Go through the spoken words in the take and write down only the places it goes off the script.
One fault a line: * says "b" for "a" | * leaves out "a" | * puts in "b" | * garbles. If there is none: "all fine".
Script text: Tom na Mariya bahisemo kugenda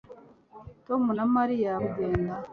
* leaves out "bahisemo"